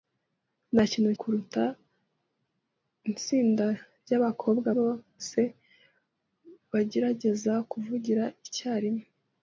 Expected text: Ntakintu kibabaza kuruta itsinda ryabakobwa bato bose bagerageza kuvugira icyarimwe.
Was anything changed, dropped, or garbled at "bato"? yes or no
yes